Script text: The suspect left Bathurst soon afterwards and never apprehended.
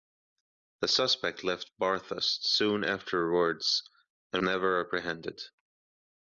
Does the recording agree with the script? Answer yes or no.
yes